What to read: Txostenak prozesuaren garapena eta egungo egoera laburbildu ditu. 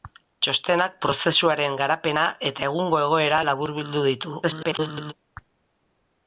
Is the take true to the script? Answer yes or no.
no